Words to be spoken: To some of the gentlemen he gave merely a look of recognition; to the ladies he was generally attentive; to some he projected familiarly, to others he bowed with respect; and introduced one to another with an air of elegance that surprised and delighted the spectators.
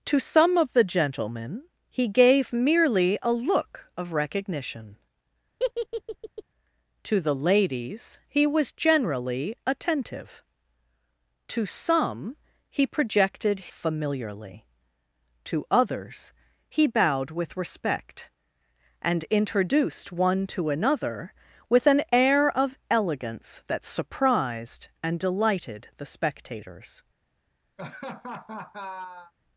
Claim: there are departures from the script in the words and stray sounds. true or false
true